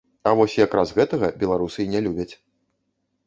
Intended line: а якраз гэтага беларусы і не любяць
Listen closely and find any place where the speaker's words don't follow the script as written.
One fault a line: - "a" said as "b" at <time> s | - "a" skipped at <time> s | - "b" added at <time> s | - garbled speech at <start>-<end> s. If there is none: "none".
- "вось" added at 0.4 s